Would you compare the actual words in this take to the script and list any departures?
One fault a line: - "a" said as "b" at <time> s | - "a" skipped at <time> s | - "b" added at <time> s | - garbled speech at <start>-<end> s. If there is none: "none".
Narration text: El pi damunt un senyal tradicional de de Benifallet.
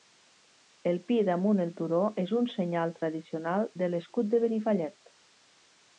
- "el turó és" added at 1.6 s
- "l'escut" added at 3.9 s